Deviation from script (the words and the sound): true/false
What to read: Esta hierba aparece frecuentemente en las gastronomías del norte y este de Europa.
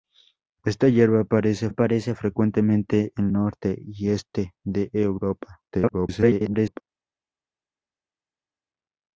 true